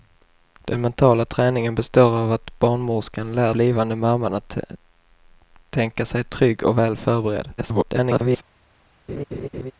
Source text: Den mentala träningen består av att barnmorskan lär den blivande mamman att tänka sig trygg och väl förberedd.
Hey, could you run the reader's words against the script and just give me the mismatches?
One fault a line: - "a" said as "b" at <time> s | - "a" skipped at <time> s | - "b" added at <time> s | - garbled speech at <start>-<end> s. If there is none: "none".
- "den" skipped at 3.5 s
- garbled speech at 7.6-8.4 s